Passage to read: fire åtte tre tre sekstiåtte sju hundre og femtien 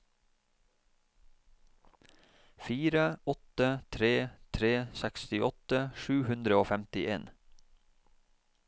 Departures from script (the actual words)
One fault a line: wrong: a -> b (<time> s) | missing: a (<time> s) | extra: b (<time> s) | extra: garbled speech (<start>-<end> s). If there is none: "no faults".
no faults